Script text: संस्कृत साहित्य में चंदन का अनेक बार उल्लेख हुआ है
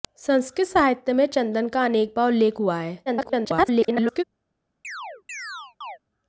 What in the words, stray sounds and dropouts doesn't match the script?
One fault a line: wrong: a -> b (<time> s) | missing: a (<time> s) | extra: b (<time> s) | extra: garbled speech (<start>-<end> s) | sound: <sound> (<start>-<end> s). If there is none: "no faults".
extra: garbled speech (3.1-4.2 s)
sound: chirp (4.8-6.0 s)